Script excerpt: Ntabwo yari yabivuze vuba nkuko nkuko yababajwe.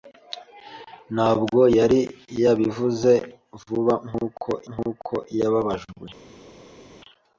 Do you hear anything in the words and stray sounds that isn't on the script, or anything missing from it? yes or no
no